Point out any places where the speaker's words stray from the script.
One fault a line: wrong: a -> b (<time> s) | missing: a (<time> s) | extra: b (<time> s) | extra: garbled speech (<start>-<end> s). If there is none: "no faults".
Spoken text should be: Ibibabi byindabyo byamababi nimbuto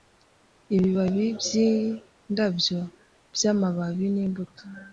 no faults